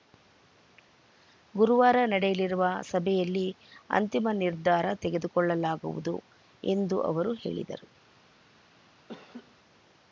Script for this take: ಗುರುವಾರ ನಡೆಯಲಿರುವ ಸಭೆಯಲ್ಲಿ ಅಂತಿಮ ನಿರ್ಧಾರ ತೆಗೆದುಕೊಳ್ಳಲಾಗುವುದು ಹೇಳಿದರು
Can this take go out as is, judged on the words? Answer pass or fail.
fail